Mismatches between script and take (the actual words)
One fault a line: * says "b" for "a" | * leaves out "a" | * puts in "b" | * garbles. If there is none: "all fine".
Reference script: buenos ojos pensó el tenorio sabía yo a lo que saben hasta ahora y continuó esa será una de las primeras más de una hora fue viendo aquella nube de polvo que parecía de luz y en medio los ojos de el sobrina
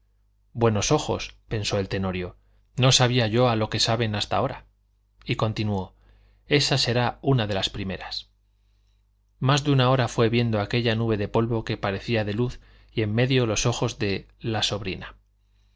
* puts in "no"
* says "la" for "el"